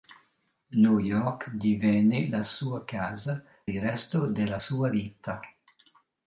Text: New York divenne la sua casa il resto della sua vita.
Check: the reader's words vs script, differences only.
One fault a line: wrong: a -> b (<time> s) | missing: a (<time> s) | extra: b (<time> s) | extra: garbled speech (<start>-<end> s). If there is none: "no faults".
no faults